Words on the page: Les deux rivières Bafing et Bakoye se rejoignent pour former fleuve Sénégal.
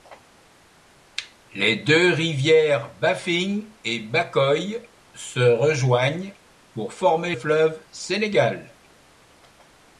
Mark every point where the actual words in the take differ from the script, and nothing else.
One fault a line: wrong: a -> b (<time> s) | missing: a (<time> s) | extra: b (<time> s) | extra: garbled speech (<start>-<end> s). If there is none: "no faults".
no faults